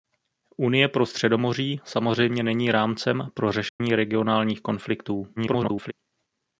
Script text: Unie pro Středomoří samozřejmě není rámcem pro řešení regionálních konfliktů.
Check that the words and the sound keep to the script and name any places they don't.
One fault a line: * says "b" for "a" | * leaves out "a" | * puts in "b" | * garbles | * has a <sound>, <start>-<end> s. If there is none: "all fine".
* has a dropout, 3.7-3.8 s
* garbles